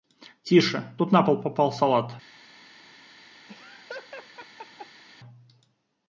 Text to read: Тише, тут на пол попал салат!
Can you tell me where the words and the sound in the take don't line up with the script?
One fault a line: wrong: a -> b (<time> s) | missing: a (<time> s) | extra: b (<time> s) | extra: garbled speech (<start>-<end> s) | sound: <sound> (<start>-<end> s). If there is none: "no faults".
sound: laugh (3.5-5.0 s)